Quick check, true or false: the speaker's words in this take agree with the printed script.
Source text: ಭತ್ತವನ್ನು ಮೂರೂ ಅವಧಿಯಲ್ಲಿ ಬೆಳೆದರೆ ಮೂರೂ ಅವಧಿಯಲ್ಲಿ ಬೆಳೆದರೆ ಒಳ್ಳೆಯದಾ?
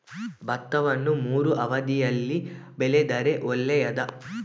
false